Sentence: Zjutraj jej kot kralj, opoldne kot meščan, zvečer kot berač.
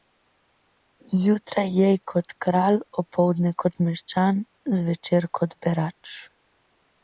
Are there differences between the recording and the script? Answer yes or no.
no